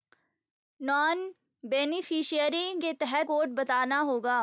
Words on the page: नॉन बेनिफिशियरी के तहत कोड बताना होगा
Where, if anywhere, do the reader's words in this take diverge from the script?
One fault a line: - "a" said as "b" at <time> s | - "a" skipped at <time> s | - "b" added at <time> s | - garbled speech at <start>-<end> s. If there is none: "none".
none